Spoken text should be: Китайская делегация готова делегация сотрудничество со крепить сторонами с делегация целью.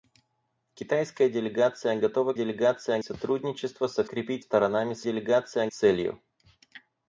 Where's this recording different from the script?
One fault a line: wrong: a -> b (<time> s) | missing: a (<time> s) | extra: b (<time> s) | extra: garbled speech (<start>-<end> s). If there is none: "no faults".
no faults